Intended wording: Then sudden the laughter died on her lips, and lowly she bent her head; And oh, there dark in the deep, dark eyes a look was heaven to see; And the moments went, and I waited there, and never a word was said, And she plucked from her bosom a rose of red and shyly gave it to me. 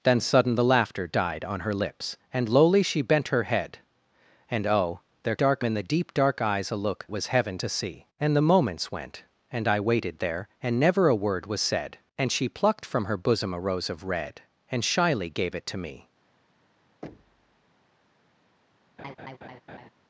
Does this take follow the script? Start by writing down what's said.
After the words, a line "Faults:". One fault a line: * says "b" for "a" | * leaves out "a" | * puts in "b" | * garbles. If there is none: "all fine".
Then sudden the laughter died on her lips, and lowly she bent her head; And oh, there dark in the deep, dark eyes a look was heaven to see; And the moments went, and I waited there, and never a word was said, And she plucked from her bosom a rose of red and shyly gave it to me.
Faults:
all fine